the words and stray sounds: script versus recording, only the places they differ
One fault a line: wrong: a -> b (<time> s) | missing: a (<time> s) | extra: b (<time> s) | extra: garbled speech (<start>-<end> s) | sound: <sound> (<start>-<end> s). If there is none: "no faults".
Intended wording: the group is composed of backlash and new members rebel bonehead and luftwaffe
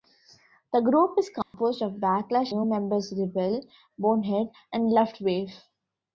sound: dropout (1.4-1.5 s)
missing: and (2.5 s)